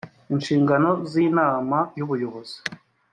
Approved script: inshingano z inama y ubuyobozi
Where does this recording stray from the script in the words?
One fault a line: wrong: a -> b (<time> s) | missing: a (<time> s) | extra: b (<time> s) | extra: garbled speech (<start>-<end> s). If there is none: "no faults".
no faults